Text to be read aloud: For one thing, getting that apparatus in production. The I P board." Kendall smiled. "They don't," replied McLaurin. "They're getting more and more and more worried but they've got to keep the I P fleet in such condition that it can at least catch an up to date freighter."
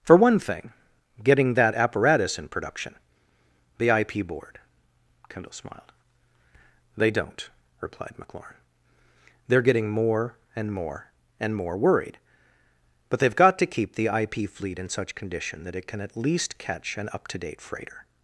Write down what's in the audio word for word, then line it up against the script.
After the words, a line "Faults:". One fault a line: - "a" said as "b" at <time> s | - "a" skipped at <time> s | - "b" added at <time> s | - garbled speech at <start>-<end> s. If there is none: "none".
For one thing, getting that apparatus in production. The I P board." Kendall smiled. "They don't," replied McLaurin. "They're getting more and more and more worried but they've got to keep the I P fleet in such condition that it can at least catch an up to date freighter."
Faults:
none